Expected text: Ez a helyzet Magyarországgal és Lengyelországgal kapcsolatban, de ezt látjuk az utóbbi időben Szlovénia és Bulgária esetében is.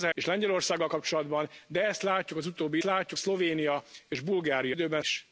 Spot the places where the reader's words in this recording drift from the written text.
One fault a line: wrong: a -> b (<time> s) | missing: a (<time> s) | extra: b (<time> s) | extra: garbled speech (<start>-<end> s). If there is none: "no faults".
missing: helyzet Magyarországgal (0.1 s)
wrong: időben -> látjuk (2.8 s)
wrong: esetében -> időben (4.7 s)